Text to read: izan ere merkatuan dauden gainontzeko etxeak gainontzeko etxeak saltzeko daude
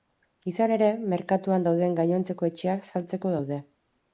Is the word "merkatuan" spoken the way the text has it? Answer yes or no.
yes